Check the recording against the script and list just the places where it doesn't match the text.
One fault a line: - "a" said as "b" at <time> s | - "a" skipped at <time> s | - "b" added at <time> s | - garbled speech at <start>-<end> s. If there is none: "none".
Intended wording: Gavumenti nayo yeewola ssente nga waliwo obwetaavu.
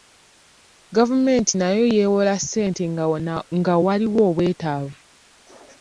none